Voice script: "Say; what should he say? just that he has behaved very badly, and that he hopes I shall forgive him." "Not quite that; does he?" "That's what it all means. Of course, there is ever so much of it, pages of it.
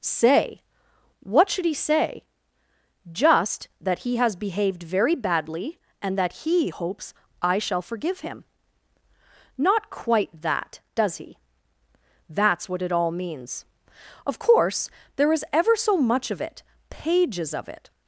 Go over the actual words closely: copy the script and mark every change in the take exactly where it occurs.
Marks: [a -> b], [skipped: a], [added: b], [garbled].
"Say; what should he say? just that he has behaved very badly, and that he hopes I shall forgive him." "Not quite that; does he?" "That's what it all means. Of course, there is ever so much of it, pages of it.